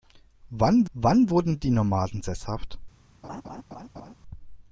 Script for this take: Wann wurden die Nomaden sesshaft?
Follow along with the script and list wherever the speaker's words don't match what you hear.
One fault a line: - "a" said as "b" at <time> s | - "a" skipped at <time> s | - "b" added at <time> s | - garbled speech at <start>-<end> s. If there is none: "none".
- "wann" added at 0.9 s